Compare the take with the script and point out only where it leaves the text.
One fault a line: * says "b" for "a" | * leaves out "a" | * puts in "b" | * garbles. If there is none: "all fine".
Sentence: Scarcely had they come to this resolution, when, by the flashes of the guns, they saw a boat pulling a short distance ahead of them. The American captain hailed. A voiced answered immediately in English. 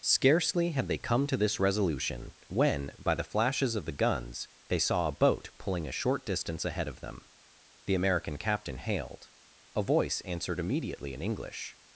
* says "voice" for "voiced"